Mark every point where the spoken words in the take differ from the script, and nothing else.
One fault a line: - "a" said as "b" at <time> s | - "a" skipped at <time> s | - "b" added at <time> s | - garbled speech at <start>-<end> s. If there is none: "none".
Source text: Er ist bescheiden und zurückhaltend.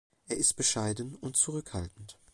none